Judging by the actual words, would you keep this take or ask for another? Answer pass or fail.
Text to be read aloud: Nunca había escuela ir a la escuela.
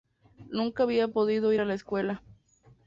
fail